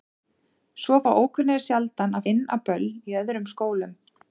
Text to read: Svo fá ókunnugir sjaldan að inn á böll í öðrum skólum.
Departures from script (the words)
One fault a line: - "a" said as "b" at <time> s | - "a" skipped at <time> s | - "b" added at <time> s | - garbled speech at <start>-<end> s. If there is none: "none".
none